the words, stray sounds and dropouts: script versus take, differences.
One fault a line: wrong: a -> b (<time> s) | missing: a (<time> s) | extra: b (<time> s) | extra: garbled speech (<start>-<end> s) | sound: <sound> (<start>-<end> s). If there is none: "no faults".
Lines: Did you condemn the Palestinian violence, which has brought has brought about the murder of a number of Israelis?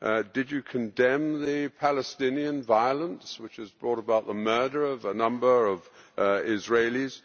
missing: has brought (4.0 s)